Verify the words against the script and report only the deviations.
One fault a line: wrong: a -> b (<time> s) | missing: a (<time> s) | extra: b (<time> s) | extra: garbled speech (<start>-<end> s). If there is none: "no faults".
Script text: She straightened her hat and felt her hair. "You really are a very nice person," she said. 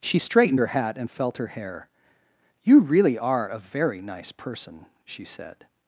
no faults